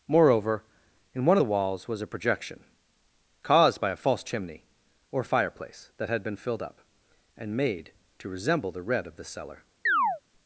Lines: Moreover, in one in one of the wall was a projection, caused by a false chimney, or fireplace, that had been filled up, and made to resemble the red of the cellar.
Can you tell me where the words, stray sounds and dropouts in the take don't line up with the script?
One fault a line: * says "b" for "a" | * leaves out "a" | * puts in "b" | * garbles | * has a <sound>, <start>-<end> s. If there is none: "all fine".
* leaves out "in one"
* says "walls" for "wall"
* has a chirp, 9.9-10.2 s